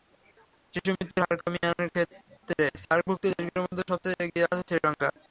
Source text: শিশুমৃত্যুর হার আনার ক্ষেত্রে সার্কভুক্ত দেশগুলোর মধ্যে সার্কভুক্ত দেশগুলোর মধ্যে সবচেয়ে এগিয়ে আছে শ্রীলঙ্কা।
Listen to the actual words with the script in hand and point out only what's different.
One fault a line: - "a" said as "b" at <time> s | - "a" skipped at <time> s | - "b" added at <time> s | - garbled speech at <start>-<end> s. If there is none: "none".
- "কমিয়ে" added at 1.4 s
- "সার্কভুক্ত দেশগুলোর মধ্যে" skipped at 3.8 s